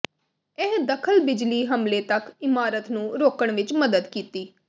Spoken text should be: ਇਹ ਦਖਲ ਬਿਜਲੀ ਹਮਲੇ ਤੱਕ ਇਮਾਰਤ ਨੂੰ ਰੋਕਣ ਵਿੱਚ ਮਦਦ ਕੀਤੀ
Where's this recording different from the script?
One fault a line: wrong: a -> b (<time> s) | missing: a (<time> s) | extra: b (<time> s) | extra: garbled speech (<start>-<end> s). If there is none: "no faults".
no faults